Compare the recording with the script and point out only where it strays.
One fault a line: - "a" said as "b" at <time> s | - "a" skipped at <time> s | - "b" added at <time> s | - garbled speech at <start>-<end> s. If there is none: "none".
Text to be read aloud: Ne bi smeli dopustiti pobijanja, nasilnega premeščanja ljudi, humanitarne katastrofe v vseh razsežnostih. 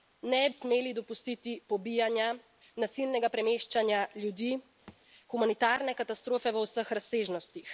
- "bi" skipped at 0.5 s